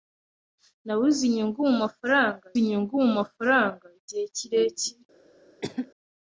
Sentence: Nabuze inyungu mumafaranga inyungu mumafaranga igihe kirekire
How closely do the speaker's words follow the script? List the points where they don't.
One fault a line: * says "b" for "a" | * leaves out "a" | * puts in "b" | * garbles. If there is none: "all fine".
all fine